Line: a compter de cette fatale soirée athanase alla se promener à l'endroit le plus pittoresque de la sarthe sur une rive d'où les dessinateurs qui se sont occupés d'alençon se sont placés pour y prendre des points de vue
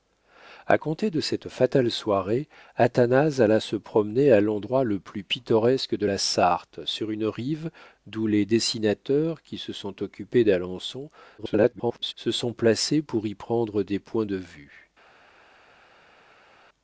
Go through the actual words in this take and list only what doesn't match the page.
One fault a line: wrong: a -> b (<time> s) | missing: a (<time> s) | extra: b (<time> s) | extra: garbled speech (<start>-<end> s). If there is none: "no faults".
extra: garbled speech (11.4-12.1 s)